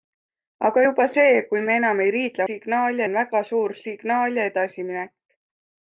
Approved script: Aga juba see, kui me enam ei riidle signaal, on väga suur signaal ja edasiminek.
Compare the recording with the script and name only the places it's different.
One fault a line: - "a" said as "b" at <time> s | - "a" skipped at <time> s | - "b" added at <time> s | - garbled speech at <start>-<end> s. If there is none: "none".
none